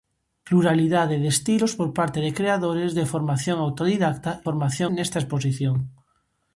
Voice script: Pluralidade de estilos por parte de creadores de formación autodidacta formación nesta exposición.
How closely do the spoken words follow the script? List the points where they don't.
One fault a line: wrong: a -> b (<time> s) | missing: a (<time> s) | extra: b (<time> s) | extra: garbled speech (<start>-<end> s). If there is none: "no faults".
no faults